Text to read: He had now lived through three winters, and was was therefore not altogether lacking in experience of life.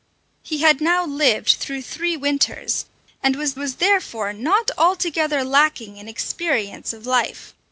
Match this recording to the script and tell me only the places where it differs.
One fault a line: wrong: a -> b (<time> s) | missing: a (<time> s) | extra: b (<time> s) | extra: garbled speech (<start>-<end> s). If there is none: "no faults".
no faults